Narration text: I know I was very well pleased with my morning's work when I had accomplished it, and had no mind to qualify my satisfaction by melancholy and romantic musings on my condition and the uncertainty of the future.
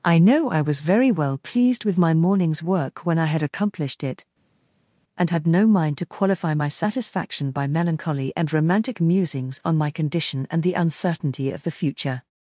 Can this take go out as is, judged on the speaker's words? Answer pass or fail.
pass